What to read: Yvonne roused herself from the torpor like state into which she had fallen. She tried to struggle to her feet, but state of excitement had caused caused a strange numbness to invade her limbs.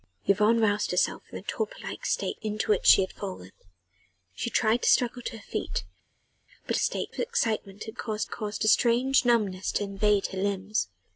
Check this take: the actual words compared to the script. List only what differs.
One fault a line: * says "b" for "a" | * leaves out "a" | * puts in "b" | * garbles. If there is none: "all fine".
all fine